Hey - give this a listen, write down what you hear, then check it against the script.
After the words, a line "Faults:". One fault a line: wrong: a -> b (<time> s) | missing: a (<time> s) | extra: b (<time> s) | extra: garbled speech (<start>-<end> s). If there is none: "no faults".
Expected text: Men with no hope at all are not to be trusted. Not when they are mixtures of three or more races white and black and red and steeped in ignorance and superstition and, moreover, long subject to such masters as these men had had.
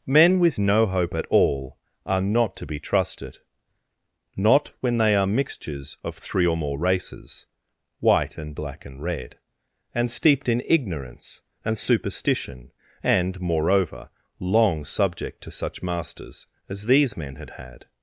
Men with no hope at all are not to be trusted. Not when they are mixtures of three or more races white and black and red and steeped in ignorance and superstition and, moreover, long subject to such masters as these men had had.
Faults:
no faults